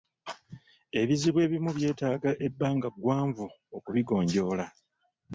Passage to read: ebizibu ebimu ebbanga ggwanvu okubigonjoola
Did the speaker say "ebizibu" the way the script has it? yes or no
yes